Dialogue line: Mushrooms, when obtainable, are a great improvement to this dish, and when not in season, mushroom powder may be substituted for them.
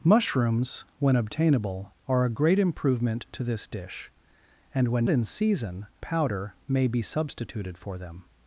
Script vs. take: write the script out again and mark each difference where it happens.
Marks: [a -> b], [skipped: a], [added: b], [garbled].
Mushrooms, when obtainable, are a great improvement to this dish, and when [skipped: not] in season, [skipped: mushroom] powder may be substituted for them.